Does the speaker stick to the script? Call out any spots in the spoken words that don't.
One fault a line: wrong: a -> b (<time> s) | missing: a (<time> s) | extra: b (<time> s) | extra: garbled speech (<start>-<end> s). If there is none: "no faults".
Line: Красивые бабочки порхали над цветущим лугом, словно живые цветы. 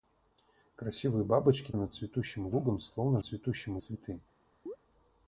missing: порхали (1.7 s)
wrong: живые -> цветущим (3.2 s)